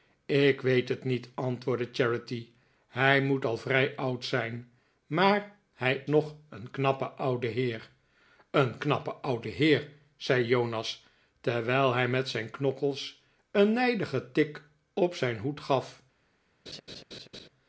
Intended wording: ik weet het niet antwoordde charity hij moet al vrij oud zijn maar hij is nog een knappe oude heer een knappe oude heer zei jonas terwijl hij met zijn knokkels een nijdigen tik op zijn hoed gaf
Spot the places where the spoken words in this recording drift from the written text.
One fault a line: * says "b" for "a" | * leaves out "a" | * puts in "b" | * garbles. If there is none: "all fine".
* leaves out "is"